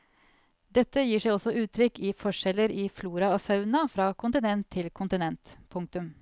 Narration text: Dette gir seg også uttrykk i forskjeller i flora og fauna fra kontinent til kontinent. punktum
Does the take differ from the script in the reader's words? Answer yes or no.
no